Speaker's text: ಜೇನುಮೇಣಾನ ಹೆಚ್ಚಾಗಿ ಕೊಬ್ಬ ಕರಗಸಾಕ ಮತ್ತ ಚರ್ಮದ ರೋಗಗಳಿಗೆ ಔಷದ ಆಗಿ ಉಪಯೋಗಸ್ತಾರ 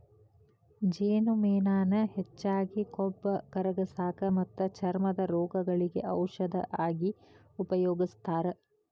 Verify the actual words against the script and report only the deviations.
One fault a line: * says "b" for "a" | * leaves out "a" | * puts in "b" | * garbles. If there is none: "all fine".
all fine